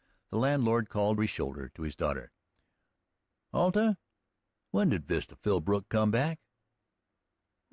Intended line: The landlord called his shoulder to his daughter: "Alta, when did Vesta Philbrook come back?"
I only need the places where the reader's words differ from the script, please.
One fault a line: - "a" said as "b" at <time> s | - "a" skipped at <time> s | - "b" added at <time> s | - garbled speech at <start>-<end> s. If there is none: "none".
none